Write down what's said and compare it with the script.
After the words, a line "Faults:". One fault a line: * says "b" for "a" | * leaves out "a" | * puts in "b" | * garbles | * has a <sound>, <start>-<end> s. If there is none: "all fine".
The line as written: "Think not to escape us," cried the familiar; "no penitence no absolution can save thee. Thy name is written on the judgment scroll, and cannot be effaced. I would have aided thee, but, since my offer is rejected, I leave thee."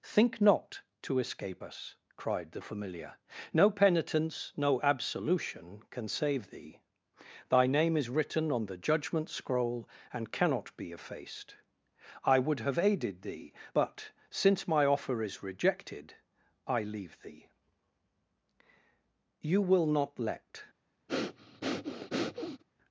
"Think not to escape us," cried the familiar; "no penitence no absolution can save thee. Thy name is written on the judgment scroll, and cannot be effaced. I would have aided thee, but, since my offer is rejected, I leave thee." "You will not let
Faults:
* puts in "You will not let"
* has a breath, 21.1-22.6 s